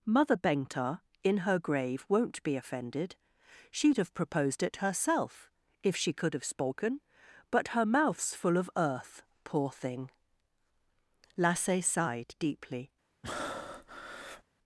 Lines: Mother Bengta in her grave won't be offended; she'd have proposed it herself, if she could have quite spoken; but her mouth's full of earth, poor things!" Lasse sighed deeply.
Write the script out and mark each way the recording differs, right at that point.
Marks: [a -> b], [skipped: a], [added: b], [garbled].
Mother Bengta in her grave won't be offended; she'd have proposed it herself, if she could have [skipped: quite] spoken; but her mouth's full of earth, poor [things!" -> thing] Lasse sighed deeply.